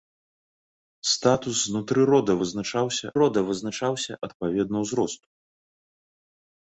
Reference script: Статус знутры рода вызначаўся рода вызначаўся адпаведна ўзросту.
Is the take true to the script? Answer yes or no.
yes